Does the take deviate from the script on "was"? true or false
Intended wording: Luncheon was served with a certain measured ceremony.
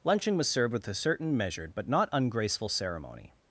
false